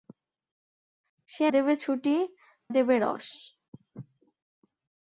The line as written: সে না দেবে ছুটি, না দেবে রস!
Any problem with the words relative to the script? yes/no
yes